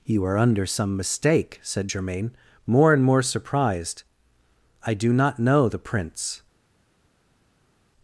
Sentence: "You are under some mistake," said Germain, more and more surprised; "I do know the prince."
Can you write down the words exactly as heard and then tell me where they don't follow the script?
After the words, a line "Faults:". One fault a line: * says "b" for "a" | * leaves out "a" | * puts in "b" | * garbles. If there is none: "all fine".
"You are under some mistake," said Germain, more and more surprised; "I do not know the prince."
Faults:
* puts in "not"